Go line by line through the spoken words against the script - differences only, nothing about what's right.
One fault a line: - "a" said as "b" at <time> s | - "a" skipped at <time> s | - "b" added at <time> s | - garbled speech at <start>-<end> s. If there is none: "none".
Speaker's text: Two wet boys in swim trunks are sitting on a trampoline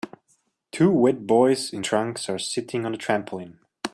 - "swim" skipped at 1.9 s